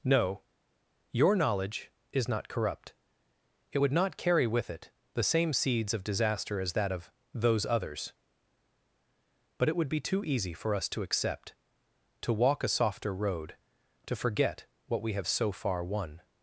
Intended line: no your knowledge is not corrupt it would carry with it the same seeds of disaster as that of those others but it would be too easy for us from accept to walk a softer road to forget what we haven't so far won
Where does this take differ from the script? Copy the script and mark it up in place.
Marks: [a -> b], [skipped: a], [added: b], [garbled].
no your knowledge is not corrupt it would [added: not] carry with it the same seeds of disaster as that of those others but it would be too easy for us [from -> to] accept to walk a softer road to forget what we [haven't -> have] so far won